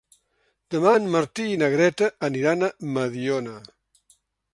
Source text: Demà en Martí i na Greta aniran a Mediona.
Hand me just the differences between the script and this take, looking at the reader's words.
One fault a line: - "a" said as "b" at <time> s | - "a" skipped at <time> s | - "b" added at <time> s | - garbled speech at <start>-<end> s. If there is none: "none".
none